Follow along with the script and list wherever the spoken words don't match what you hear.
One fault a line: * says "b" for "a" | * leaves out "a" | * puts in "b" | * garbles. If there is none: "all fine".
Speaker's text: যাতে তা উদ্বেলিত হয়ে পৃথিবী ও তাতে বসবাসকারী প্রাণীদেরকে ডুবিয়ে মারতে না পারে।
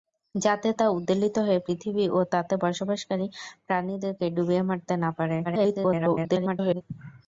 * garbles